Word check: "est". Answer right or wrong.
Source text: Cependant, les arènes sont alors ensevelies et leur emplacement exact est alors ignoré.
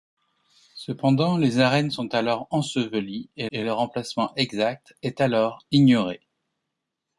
right